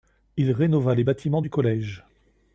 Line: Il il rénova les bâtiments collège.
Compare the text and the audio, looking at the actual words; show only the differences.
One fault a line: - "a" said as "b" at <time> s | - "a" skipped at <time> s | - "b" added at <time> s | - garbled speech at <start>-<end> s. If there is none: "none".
- "il" skipped at 0.5 s
- "du" added at 1.4 s